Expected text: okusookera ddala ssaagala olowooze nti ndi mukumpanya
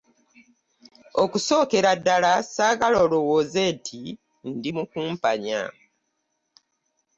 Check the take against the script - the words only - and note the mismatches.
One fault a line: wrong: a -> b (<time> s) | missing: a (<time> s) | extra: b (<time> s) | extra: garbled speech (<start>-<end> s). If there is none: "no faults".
no faults